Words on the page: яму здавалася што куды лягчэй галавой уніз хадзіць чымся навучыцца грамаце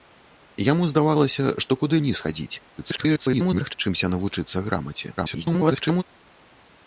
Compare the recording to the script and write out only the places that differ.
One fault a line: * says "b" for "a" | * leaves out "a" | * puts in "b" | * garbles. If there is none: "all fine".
* leaves out "лягчэй галавой"
* garbles
* garbles